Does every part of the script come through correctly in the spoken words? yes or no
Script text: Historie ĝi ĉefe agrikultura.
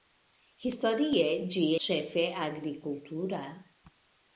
yes